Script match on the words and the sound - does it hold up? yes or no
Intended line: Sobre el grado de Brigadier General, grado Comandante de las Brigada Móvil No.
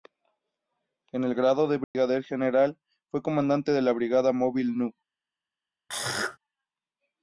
no